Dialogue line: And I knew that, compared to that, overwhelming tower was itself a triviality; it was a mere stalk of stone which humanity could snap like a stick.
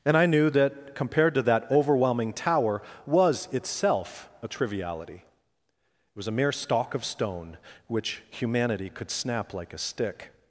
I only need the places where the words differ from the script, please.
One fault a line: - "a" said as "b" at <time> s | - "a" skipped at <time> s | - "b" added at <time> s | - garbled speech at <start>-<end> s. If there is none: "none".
none